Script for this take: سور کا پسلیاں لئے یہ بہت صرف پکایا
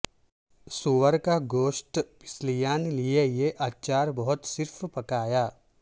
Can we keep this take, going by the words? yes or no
no